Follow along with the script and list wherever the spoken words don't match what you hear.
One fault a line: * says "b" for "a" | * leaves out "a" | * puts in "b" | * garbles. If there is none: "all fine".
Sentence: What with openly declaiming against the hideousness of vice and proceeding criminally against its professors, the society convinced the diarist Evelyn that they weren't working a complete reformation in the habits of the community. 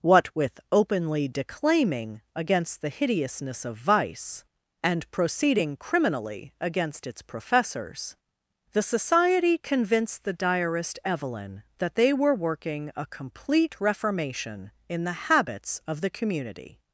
* says "were" for "weren't"